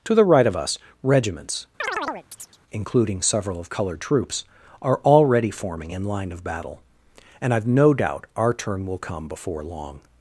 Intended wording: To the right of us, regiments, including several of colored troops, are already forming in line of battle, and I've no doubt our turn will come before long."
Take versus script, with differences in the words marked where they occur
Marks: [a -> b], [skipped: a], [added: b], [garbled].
To the right of us, regiments, including several of colored troops, are already forming in line of battle, and I've no doubt our turn will come before long."